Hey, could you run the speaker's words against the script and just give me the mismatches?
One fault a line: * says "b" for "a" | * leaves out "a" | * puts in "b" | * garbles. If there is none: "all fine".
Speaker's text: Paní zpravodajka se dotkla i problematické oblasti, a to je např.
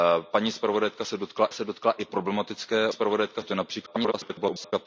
* puts in "se dotkla"
* says "zpravodajka" for "oblasti"
* garbles